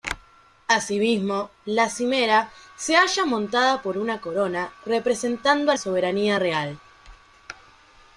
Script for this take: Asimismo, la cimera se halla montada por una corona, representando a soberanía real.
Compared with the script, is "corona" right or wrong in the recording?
right